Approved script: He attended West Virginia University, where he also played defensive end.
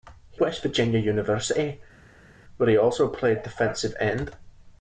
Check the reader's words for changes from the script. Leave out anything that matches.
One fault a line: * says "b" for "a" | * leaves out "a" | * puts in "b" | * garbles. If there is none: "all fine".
* leaves out "attended"